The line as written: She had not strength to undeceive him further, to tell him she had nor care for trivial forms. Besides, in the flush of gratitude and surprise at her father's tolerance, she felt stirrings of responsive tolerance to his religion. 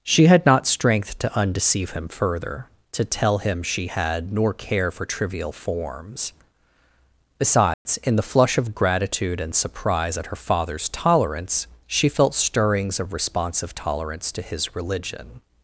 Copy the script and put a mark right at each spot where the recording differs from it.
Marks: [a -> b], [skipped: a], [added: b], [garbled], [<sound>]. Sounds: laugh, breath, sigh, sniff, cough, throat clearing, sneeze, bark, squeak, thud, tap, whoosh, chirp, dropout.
She had not strength to undeceive him further, to tell him she had nor care for trivial forms. Besides, [dropout] in the flush of gratitude and surprise at her father's tolerance, she felt stirrings of responsive tolerance to his religion.